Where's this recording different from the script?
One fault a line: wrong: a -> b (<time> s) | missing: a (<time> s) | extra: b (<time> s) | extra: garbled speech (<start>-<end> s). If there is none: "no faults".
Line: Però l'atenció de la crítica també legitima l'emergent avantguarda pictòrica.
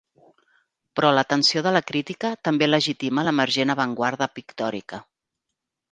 no faults